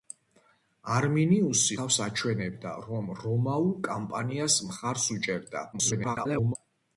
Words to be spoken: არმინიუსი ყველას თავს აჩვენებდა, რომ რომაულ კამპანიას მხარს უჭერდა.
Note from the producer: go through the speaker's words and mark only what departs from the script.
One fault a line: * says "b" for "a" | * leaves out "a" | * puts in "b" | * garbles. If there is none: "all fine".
* leaves out "ყველას"
* garbles